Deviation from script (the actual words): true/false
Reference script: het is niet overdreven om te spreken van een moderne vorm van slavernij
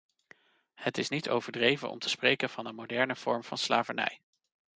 false